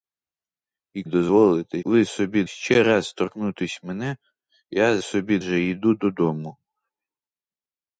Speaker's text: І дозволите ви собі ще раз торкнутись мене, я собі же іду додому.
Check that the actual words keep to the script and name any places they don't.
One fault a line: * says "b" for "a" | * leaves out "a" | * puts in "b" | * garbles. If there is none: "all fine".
all fine